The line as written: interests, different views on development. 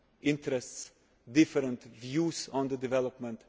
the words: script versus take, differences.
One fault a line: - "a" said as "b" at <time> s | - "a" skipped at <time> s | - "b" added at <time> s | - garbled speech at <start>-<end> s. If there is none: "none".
none